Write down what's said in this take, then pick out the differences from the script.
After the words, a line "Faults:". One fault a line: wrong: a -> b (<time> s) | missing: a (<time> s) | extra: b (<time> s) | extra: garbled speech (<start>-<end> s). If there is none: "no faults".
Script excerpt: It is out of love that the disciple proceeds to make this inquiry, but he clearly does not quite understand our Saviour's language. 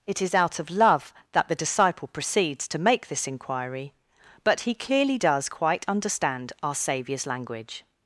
It is out of love that the disciple proceeds to make this inquiry, but he clearly does quite understand our Saviour's language.
Faults:
missing: not (5.5 s)